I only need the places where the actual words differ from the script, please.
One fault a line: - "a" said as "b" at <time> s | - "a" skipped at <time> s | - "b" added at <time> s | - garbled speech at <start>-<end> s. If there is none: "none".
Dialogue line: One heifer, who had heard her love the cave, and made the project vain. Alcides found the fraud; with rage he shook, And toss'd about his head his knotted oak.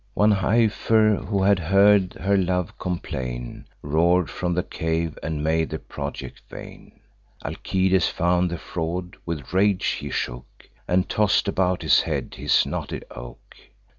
- "complain Roar'd from" added at 2.8 s